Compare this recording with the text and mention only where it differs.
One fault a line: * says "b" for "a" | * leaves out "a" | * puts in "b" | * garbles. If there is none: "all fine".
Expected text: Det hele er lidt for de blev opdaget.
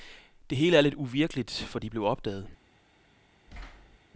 * puts in "uvirkeligt"